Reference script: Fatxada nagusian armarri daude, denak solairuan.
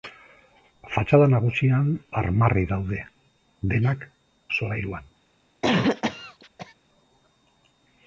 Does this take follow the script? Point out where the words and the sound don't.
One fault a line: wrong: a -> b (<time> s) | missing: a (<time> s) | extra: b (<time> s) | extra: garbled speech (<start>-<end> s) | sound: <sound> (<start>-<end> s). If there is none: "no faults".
sound: cough (5.6-6.7 s)